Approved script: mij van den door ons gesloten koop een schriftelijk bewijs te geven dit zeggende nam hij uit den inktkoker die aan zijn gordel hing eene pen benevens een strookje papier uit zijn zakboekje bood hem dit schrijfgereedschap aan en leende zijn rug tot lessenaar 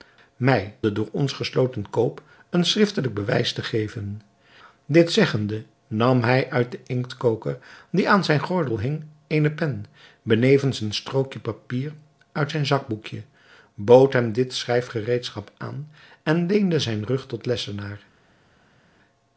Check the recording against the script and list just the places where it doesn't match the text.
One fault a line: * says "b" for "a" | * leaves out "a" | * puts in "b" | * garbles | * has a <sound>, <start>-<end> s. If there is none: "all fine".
* leaves out "van"